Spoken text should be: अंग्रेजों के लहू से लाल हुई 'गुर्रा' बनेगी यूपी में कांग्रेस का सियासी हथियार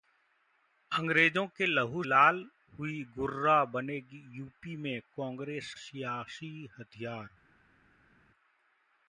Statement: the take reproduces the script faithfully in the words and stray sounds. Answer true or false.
false